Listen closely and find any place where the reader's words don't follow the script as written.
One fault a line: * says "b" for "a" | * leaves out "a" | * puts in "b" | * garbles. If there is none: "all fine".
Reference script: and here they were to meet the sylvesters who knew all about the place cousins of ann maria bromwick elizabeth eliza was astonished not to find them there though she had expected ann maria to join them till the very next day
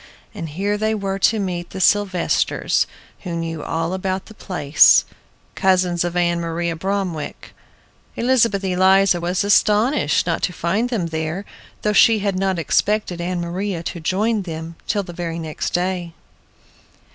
* puts in "not"